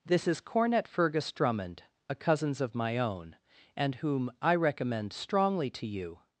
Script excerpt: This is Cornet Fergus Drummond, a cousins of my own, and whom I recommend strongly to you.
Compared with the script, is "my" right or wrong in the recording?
right